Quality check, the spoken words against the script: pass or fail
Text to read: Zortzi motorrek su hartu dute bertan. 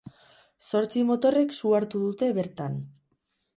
pass